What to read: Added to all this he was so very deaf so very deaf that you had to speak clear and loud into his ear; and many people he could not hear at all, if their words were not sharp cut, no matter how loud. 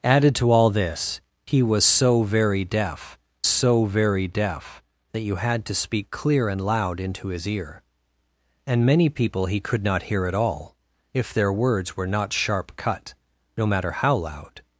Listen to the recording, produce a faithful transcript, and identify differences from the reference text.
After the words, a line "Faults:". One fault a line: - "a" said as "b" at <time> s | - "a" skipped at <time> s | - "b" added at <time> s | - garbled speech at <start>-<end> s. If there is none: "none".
Added to all this he was so very deaf so very deaf that you had to speak clear and loud into his ear; and many people he could not hear at all, if their words were not sharp cut, no matter how loud.
Faults:
none